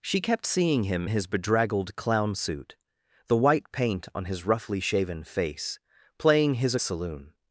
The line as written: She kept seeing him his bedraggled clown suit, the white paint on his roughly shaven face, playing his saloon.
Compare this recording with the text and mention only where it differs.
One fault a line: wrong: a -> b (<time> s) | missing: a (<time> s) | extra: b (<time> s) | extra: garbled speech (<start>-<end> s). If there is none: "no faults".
no faults